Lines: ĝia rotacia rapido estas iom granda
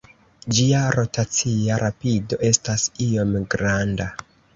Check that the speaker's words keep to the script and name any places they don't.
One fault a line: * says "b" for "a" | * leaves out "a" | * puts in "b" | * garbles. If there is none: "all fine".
all fine